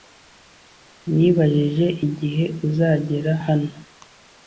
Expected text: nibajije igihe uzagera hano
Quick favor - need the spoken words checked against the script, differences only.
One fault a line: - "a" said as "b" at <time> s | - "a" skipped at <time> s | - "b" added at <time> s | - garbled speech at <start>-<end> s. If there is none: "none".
none